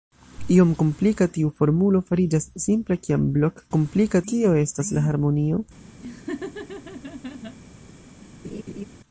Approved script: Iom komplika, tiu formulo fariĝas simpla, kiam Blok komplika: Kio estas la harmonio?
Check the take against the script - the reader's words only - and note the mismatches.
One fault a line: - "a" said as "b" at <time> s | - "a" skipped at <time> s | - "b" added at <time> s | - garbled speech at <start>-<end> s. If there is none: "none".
none